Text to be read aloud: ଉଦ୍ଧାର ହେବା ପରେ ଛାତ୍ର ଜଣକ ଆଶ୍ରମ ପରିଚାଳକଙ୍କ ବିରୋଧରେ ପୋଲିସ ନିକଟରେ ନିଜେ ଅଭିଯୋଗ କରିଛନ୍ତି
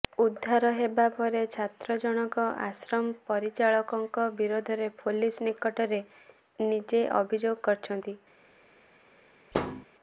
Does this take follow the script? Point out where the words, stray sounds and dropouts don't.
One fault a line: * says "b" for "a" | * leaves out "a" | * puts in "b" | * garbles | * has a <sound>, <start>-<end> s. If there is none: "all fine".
* has a thud, 9.5-9.9 s